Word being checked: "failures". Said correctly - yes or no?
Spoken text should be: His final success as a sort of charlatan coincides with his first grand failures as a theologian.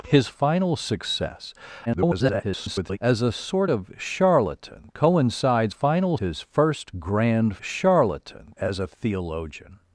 no